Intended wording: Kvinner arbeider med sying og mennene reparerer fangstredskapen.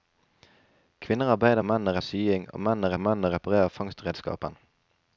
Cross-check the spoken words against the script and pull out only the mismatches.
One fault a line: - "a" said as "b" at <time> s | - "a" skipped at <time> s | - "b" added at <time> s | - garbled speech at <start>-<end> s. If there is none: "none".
- "med" said as "mennene" at 1.6 s
- "mennene" added at 3.0 s